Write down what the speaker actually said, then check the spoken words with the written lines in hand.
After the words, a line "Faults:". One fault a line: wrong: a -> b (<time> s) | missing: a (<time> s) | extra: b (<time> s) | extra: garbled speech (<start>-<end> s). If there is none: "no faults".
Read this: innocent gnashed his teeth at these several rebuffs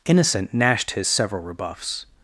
innocent gnashed his several rebuffs
Faults:
missing: teeth at these (1.1 s)